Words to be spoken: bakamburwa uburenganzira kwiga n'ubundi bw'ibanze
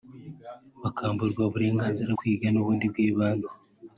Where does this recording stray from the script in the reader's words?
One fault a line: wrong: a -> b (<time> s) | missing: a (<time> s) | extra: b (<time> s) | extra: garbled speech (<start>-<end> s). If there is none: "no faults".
no faults